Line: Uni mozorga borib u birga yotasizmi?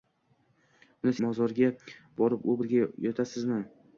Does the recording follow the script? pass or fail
pass